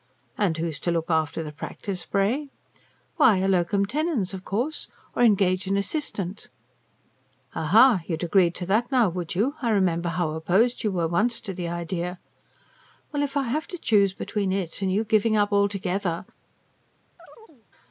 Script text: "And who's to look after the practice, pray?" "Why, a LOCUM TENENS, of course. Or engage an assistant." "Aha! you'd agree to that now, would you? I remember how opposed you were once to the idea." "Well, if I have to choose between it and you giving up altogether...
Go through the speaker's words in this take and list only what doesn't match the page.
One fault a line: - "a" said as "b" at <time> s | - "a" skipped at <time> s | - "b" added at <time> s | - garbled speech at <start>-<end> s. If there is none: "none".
none